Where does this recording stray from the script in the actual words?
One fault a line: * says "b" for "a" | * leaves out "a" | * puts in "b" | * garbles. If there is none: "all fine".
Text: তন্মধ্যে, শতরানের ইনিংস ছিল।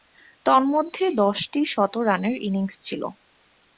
* puts in "দশটি"